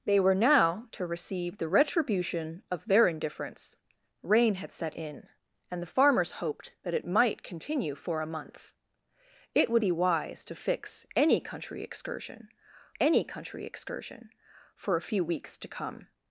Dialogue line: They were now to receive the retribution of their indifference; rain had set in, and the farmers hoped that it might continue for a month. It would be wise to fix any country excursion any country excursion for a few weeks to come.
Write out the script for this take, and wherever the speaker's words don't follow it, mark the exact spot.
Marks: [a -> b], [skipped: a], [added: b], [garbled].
They were now to receive the retribution of their indifference; rain had set in, and the farmers hoped that it might continue for a month. It would be wise to fix any country excursion any country excursion for a few weeks to come.